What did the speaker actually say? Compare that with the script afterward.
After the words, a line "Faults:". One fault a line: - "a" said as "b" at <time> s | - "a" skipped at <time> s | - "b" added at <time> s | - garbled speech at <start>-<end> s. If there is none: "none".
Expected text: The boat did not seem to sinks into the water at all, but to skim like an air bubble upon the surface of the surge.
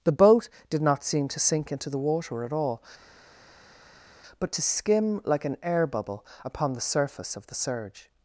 The boat did not seem to sink into the water at all, but to skim like an air bubble upon the surface of the surge.
Faults:
- "sinks" said as "sink" at 1.4 s